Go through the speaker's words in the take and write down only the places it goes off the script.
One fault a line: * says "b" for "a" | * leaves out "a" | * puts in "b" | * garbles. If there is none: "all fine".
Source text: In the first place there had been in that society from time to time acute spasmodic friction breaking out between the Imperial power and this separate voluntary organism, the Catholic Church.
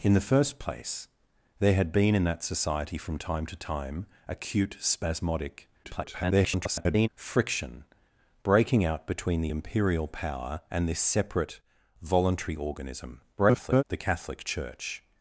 * garbles
* garbles